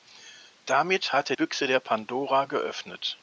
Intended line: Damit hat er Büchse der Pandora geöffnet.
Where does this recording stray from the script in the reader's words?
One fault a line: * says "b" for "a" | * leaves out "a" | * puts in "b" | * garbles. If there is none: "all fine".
all fine